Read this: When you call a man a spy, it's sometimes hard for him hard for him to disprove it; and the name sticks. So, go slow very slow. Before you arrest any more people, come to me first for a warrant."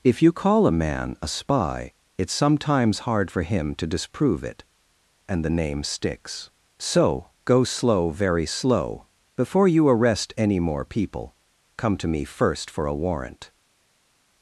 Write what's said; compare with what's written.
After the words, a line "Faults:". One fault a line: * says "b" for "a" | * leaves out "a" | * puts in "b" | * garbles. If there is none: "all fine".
If you call a man a spy, it's sometimes hard for him to disprove it; and the name sticks. So, go slow very slow. Before you arrest any more people, come to me first for a warrant."
Faults:
* says "If" for "When"
* leaves out "hard for him"